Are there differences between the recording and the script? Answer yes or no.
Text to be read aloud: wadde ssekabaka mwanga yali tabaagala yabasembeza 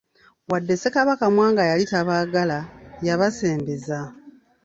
no